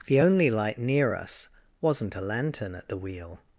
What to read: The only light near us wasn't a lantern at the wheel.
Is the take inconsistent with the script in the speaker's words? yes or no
no